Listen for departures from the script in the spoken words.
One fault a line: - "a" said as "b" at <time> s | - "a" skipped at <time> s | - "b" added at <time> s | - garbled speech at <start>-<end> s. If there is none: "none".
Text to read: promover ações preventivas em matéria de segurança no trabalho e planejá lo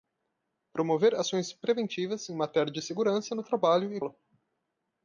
- "planejá" skipped at 4.0 s